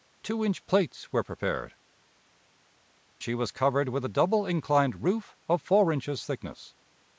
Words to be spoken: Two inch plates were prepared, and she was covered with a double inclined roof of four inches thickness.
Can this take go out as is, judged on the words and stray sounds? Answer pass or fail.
fail